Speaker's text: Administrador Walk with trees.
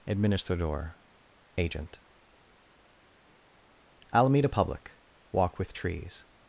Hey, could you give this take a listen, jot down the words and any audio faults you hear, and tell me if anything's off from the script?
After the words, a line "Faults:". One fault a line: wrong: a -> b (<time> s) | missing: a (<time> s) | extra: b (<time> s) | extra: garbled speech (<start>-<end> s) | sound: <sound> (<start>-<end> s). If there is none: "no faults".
Administrador Agent. Alameda Public walk with trees.
Faults:
extra: Agent Alameda Public (1.6 s)